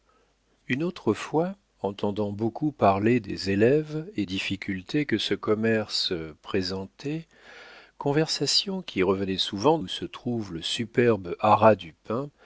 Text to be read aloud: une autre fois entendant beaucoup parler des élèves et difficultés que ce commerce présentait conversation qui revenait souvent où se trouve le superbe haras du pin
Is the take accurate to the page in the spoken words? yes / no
yes